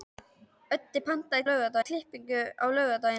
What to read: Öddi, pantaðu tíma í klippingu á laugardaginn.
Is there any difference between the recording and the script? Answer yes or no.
yes